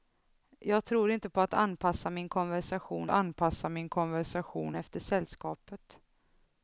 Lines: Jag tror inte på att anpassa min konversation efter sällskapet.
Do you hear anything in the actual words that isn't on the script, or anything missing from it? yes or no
yes